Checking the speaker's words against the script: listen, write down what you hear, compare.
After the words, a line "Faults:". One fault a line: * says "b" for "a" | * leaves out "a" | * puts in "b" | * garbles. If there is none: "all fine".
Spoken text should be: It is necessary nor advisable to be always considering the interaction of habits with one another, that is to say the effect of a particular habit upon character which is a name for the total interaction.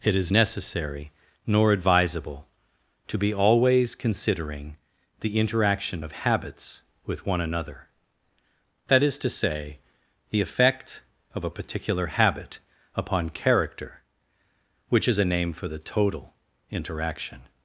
It is necessary nor advisable to be always considering the interaction of habits with one another, that is to say the effect of a particular habit upon character which is a name for the total interaction.
Faults:
all fine